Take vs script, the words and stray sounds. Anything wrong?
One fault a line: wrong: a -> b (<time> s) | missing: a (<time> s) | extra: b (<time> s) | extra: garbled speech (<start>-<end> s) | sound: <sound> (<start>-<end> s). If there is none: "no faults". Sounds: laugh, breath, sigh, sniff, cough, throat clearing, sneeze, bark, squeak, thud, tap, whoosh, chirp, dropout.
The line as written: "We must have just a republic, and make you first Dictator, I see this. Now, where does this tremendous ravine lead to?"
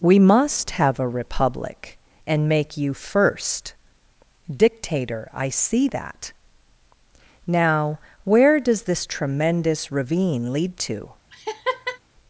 missing: just (1.0 s)
wrong: this -> that (5.9 s)
sound: laugh (11.3-12.0 s)